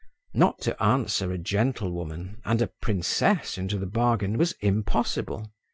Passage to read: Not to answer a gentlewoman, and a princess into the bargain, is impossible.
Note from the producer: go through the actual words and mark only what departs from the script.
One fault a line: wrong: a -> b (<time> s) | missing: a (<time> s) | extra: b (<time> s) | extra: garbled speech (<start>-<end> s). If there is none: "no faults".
wrong: is -> was (4.4 s)